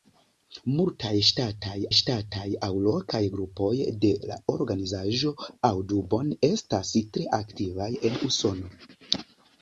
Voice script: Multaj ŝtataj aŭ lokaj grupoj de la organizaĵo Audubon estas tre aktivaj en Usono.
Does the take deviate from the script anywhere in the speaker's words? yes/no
yes